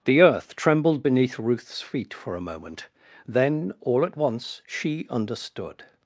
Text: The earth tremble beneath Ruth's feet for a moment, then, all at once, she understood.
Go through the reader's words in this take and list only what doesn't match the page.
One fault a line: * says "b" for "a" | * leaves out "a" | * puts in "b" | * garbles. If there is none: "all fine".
* says "trembled" for "tremble"